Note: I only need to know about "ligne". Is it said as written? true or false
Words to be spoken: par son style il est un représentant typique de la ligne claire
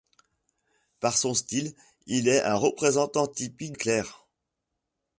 false